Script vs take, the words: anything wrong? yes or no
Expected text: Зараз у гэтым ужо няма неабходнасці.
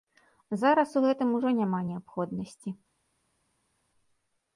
no